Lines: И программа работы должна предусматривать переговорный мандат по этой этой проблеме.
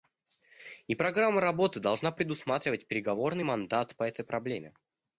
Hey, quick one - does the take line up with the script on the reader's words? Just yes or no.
no